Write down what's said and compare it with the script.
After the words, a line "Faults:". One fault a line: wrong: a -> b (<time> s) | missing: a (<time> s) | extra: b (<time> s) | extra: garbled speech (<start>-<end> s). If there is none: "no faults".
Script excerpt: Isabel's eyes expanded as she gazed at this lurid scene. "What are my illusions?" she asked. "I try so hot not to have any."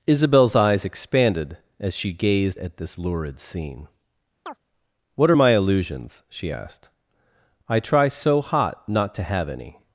Isabel's eyes expanded as she gazed at this lurid scene. "What are my illusions?" she asked. "I try so hot not to have any."
Faults:
no faults